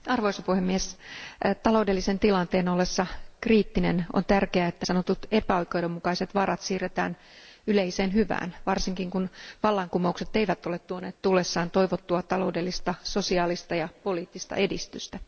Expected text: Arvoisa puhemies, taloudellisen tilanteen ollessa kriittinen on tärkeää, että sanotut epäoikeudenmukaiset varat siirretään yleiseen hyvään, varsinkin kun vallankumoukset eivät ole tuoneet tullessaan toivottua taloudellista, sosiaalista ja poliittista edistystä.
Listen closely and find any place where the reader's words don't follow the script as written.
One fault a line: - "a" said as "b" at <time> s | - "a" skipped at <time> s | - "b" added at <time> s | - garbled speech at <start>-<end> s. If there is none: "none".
none